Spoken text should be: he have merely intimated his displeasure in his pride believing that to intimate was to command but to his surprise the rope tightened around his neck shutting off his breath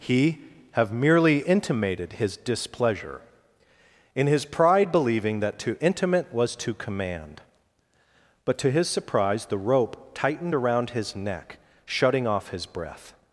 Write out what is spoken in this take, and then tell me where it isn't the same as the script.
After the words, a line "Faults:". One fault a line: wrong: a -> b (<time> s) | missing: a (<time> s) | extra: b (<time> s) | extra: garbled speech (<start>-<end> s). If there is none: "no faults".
he have merely intimated his displeasure in his pride believing that to intimate was to command but to his surprise the rope tightened around his neck shutting off his breath
Faults:
no faults